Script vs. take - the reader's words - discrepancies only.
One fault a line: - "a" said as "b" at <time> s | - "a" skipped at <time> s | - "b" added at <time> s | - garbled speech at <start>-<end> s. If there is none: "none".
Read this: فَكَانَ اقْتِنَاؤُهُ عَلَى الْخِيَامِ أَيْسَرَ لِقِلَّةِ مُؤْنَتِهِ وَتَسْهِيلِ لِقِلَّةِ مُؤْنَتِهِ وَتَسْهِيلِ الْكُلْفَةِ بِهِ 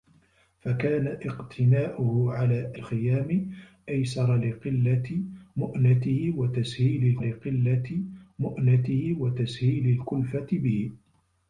none